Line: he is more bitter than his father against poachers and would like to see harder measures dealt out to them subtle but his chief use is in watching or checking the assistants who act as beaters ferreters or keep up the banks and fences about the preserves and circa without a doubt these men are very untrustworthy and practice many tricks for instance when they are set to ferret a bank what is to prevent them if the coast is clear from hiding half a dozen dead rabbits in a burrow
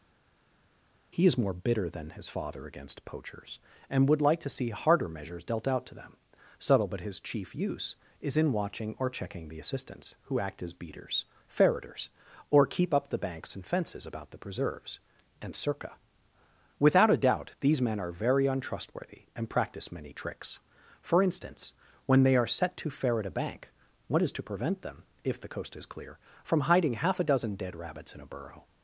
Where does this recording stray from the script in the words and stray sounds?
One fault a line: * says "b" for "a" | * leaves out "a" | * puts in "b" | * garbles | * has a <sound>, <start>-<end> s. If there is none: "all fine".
all fine